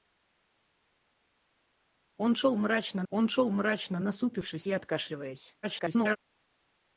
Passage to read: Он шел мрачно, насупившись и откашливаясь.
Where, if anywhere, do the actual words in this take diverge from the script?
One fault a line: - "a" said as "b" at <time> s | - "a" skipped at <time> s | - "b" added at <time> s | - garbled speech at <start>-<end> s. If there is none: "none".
- "он шел мрачно" added at 3.1 s
- garbled speech at 5.6-6.2 s